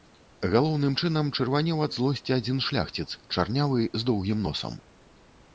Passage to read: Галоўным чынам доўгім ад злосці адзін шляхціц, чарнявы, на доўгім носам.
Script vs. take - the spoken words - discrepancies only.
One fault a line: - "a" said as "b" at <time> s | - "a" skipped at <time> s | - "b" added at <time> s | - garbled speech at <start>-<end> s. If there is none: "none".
- "доўгім" said as "чырванеў" at 1.4 s
- "на" said as "з" at 4.0 s